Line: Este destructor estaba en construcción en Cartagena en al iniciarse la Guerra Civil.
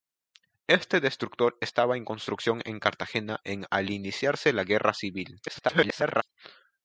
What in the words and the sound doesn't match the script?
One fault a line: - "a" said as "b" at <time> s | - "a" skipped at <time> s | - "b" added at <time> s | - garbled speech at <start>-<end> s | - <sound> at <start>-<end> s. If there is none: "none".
- garbled speech at 5.5-6.2 s